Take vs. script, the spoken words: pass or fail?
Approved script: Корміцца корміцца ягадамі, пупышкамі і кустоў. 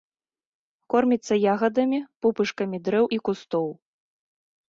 fail